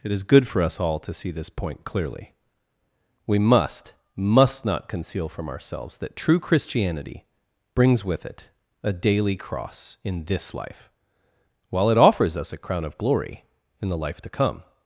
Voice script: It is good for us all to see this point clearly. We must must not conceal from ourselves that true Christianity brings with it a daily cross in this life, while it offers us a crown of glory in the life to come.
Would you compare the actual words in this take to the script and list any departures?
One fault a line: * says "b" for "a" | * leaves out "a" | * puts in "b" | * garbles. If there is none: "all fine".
all fine